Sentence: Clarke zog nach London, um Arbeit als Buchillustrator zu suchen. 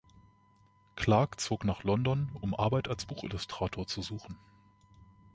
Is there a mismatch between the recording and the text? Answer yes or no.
no